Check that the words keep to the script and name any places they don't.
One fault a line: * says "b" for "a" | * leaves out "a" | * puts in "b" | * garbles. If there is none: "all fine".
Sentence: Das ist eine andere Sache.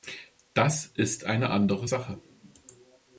all fine